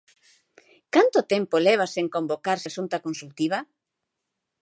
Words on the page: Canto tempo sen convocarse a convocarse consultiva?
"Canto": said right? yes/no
yes